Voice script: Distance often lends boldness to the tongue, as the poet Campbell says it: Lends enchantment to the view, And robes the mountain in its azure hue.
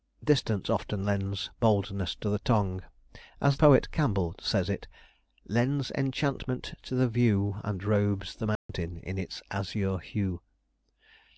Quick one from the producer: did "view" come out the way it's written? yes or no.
yes